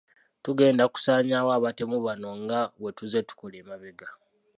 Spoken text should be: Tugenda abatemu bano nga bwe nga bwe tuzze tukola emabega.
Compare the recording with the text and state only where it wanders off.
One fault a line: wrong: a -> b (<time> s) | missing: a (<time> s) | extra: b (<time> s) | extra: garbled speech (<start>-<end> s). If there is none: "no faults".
extra: kusaanyaawo (0.9 s)
missing: nga bwe (2.9 s)